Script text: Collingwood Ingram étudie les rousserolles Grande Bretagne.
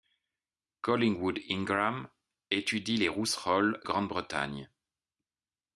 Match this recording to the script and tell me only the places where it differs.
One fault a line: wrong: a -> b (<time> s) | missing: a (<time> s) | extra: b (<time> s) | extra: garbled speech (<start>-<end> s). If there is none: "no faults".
no faults